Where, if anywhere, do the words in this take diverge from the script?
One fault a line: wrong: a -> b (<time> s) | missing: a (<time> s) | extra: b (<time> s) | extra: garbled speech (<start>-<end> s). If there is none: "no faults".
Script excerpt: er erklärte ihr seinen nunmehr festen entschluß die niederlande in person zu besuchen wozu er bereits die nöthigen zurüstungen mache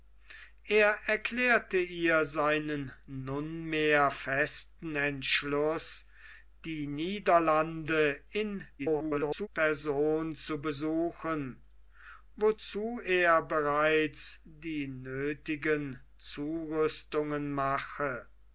extra: garbled speech (8.8-9.5 s)